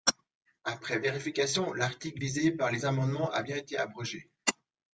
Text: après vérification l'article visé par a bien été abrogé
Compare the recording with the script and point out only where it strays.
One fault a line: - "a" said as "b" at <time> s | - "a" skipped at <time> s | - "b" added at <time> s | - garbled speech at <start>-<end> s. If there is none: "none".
- "les amendements" added at 2.7 s